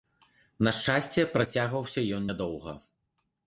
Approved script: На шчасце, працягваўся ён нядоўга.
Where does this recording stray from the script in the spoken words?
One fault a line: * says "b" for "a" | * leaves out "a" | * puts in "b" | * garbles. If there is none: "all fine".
all fine